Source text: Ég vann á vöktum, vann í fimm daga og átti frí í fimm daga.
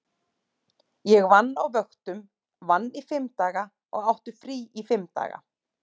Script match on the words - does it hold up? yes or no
yes